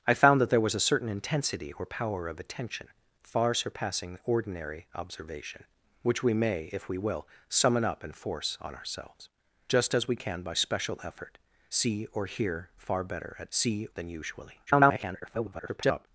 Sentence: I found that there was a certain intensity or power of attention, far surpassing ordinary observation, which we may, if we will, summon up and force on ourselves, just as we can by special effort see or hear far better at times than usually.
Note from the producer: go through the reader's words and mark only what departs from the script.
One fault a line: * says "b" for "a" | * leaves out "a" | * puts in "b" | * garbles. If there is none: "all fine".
* says "see" for "times"
* garbles